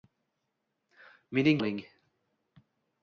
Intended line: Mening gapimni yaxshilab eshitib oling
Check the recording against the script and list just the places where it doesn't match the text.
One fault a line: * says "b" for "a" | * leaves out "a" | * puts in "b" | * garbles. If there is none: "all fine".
* leaves out "gapimni yaxshilab eshitib"